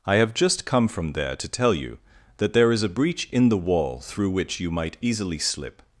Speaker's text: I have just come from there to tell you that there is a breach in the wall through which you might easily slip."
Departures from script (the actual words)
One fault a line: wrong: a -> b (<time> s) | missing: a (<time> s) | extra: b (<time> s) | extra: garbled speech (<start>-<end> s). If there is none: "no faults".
no faults